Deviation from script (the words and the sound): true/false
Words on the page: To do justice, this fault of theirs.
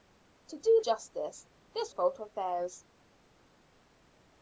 false